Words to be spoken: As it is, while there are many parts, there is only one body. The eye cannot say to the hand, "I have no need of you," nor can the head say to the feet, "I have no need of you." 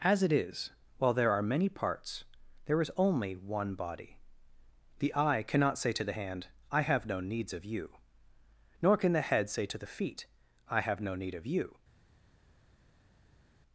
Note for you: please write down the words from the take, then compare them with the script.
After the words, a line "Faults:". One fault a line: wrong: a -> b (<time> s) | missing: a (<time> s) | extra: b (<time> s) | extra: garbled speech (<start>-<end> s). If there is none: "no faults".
As it is, while there are many parts, there is only one body. The eye cannot say to the hand, "I have no needs of you," nor can the head say to the feet, "I have no need of you."
Faults:
wrong: need -> needs (7.2 s)